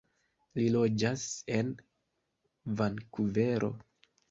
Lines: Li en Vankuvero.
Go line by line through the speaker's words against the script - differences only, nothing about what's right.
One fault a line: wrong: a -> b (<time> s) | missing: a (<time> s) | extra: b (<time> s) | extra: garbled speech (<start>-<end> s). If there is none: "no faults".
extra: loĝas (0.8 s)